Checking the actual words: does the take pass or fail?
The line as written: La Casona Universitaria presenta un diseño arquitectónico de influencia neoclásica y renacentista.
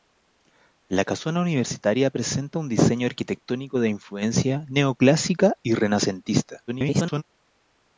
fail